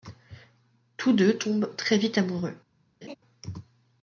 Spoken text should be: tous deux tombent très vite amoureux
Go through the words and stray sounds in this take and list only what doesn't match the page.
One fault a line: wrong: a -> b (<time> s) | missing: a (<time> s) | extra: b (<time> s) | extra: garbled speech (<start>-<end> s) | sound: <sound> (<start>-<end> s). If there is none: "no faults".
sound: laugh (3.0-3.2 s)